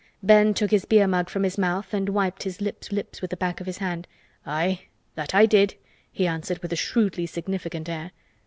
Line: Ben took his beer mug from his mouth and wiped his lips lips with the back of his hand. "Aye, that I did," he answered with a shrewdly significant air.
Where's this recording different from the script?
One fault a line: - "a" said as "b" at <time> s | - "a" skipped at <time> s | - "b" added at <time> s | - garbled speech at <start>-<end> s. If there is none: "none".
none